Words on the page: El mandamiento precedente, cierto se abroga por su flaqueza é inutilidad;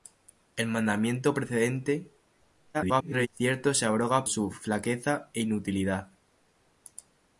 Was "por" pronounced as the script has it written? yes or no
no